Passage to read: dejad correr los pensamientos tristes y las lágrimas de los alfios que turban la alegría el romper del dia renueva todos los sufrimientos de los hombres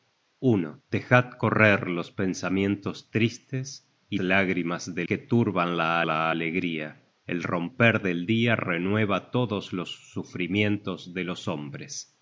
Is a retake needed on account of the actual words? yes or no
yes